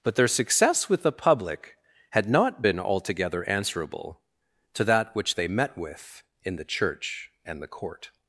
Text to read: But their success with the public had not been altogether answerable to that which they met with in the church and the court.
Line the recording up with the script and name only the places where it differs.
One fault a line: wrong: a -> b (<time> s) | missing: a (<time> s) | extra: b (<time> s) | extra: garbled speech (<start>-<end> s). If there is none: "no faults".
no faults